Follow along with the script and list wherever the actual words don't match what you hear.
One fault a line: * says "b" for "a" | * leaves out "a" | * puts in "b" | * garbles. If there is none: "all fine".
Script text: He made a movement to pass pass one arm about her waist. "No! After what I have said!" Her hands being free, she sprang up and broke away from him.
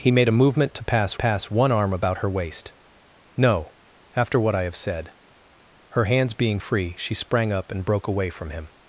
all fine